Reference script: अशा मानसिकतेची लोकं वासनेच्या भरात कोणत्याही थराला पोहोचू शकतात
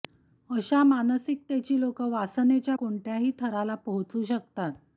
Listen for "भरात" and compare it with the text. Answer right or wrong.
wrong